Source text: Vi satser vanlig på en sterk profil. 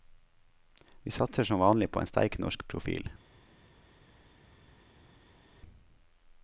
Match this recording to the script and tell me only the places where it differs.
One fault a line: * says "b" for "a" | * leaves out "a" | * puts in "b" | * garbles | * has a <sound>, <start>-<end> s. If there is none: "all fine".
* puts in "som"
* puts in "norsk"